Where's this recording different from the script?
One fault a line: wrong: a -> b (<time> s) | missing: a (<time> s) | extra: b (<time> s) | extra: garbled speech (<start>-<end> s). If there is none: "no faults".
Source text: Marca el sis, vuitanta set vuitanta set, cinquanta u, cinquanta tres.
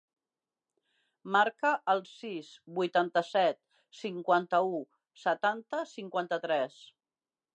missing: vuitanta set (3.6 s)
extra: setanta (5.3 s)